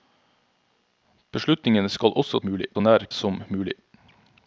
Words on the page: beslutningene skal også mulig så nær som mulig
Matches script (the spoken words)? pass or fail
pass